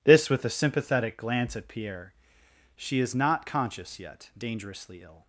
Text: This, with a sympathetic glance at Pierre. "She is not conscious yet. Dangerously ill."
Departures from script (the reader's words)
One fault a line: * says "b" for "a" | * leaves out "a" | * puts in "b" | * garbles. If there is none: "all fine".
all fine